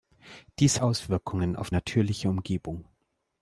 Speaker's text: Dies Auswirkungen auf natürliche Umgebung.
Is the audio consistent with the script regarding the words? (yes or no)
yes